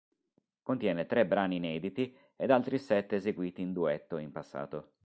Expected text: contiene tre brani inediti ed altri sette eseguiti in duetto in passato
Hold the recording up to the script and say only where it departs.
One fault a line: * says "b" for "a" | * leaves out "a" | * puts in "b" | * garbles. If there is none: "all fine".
all fine